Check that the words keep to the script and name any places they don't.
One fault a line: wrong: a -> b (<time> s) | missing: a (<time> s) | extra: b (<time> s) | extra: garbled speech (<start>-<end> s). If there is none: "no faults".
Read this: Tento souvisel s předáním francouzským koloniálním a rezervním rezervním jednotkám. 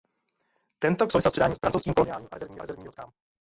no faults